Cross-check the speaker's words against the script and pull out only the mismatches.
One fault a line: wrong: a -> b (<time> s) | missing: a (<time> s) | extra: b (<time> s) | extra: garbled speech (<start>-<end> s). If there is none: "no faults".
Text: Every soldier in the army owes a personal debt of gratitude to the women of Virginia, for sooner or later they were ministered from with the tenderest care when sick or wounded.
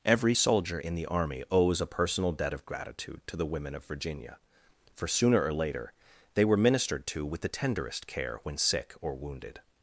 wrong: from -> to (7.1 s)